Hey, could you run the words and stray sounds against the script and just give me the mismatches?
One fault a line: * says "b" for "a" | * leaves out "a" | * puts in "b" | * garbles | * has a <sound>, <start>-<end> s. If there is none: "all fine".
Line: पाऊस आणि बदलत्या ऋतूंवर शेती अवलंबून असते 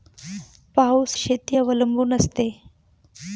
* leaves out "आणि बदलत्या ऋतूंवर"